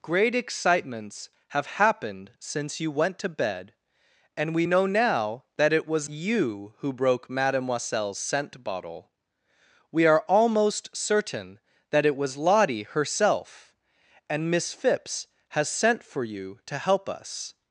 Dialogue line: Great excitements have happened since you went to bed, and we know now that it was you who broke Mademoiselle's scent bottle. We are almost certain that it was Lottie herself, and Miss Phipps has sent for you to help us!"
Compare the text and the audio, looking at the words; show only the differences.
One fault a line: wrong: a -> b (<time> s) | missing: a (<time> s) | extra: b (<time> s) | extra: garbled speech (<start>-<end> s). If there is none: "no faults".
no faults